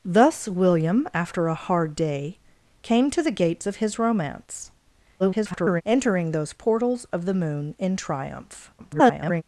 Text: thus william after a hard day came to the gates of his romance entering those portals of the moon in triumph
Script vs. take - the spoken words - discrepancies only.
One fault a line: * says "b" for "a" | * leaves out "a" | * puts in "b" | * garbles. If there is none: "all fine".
* garbles
* garbles